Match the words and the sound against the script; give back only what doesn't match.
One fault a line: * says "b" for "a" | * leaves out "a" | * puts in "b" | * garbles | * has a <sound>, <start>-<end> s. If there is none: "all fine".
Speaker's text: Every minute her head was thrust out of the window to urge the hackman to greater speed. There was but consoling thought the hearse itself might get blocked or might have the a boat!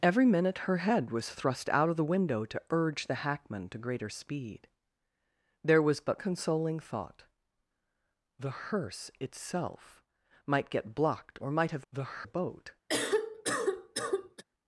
* has a cough, 12.9-14.4 s